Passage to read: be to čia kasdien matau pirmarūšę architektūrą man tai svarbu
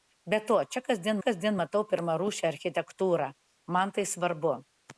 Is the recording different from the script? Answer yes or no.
yes